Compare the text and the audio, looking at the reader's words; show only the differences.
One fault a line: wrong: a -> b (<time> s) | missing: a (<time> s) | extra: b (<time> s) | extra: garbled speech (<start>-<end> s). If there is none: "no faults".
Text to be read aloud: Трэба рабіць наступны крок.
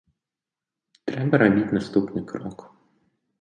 no faults